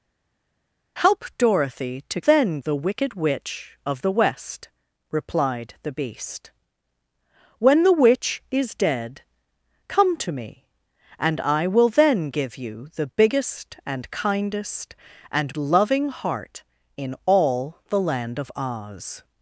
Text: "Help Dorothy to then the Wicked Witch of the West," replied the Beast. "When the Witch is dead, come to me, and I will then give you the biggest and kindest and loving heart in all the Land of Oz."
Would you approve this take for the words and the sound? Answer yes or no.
yes